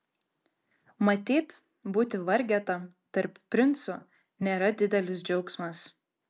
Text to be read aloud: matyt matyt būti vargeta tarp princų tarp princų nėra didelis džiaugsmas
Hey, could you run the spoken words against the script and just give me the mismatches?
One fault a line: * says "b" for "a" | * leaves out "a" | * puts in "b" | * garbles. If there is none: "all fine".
* leaves out "matyt"
* leaves out "tarp princų"